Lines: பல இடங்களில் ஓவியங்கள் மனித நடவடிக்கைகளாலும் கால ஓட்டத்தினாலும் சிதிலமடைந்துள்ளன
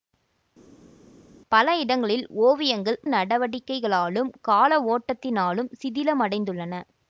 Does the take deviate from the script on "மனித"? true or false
true